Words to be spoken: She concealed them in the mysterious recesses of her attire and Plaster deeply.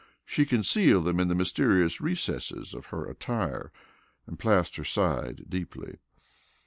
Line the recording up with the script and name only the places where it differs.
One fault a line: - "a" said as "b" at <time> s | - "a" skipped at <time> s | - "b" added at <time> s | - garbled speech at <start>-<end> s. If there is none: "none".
- "sighed" added at 4.8 s